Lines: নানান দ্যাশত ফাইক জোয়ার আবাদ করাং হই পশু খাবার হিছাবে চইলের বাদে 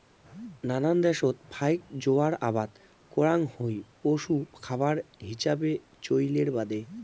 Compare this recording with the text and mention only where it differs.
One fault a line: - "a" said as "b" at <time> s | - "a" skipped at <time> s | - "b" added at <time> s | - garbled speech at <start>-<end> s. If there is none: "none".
none